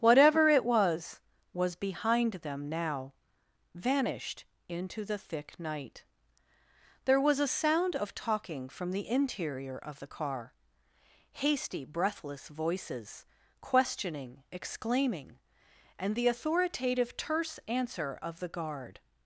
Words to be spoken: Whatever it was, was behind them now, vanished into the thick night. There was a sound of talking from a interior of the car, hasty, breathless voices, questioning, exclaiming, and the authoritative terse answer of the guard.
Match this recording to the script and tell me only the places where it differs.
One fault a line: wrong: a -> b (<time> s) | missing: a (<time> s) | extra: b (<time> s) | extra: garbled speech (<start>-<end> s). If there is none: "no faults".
wrong: a -> the (8.9 s)